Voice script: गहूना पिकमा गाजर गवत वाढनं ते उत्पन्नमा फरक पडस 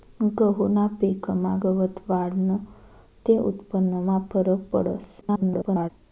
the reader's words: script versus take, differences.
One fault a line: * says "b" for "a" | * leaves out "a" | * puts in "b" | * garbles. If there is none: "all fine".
* leaves out "गाजर"
* garbles